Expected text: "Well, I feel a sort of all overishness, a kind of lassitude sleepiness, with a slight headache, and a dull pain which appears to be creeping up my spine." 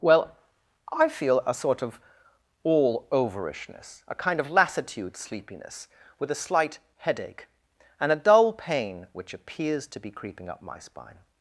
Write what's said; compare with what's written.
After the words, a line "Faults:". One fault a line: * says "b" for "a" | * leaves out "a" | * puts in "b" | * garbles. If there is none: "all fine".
"Well, I feel a sort of all overishness, a kind of lassitude sleepiness, with a slight headache, and a dull pain which appears to be creeping up my spine."
Faults:
all fine